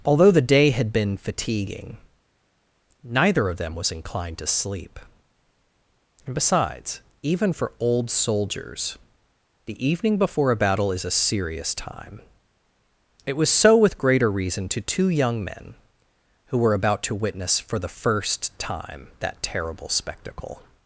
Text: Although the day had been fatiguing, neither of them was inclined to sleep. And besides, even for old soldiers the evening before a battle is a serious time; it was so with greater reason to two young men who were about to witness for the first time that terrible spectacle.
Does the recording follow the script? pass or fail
pass